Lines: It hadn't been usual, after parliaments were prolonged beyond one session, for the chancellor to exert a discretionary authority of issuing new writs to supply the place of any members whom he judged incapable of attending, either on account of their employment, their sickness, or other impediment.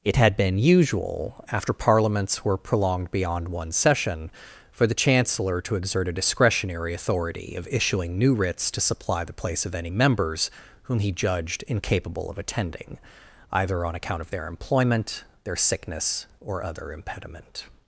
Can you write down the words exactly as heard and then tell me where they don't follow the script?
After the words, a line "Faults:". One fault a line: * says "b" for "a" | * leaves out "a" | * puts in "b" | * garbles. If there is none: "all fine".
It had been usual, after parliaments were prolonged beyond one session, for the chancellor to exert a discretionary authority of issuing new writs to supply the place of any members whom he judged incapable of attending, either on account of their employment, their sickness, or other impediment.
Faults:
* says "had" for "hadn't"